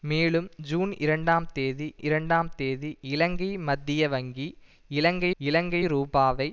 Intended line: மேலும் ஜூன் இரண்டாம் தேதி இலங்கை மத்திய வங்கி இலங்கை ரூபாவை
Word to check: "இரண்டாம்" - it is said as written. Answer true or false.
true